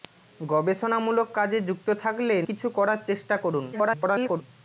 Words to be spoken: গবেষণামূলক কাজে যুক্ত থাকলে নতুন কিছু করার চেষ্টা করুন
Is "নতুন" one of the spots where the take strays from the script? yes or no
yes